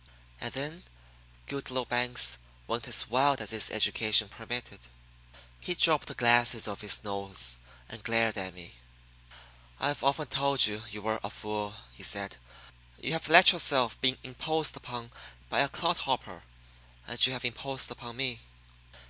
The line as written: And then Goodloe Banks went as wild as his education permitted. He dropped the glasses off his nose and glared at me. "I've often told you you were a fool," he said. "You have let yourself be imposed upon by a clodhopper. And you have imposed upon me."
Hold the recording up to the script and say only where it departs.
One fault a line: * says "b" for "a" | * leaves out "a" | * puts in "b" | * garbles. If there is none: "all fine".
all fine